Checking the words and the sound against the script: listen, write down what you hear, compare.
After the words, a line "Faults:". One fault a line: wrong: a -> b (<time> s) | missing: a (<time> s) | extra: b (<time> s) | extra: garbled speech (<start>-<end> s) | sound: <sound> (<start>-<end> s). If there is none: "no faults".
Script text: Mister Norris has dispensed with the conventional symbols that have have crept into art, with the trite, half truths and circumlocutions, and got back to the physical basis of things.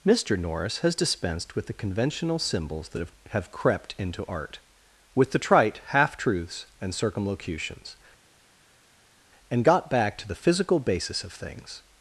Mister Norris has dispensed with the conventional symbols that have have crept into art, with the trite, half truths and circumlocutions, and got back to the physical basis of things.
Faults:
no faults